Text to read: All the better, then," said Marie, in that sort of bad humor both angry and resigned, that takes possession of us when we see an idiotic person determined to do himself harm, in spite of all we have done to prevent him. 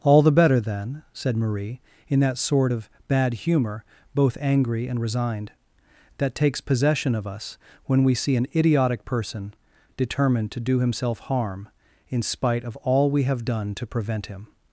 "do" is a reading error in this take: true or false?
false